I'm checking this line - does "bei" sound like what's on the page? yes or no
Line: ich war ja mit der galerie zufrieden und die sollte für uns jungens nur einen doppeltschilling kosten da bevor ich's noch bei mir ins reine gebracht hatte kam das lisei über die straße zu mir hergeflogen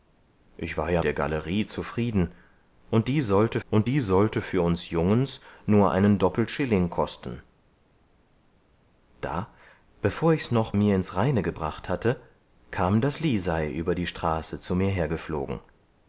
no